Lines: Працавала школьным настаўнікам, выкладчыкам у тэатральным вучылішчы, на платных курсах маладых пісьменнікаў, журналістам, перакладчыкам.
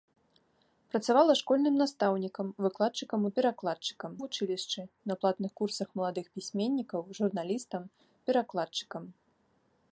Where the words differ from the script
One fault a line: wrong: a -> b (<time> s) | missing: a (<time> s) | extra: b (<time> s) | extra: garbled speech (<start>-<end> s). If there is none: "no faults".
wrong: тэатральным -> перакладчыкам (3.4 s)